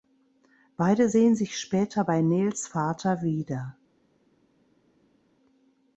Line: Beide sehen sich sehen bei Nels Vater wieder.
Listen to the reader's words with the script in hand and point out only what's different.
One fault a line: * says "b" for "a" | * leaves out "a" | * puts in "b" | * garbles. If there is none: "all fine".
* says "später" for "sehen"